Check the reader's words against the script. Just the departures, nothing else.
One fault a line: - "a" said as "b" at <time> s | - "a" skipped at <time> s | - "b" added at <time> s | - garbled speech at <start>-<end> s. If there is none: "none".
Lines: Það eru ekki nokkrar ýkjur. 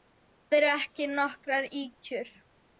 none